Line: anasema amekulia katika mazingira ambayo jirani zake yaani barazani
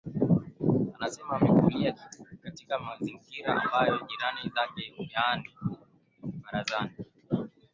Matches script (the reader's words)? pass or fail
pass